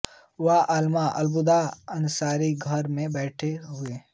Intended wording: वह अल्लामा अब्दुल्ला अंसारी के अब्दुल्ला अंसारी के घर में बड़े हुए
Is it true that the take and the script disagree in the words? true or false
true